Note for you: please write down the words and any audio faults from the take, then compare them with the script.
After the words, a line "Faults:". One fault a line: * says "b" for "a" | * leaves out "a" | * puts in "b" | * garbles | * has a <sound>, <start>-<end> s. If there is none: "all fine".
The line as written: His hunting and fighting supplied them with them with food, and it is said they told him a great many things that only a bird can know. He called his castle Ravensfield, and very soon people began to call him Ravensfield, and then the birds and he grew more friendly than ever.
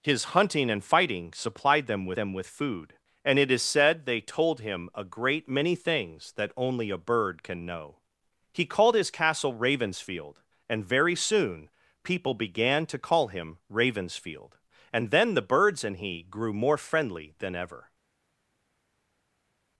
His hunting and fighting supplied them with them with food, and it is said they told him a great many things that only a bird can know. He called his castle Ravensfield, and very soon people began to call him Ravensfield, and then the birds and he grew more friendly than ever.
Faults:
all fine